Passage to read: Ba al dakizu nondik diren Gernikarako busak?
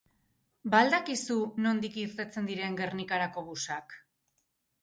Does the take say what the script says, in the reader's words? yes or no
no